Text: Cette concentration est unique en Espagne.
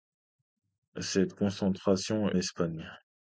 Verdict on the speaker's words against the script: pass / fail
fail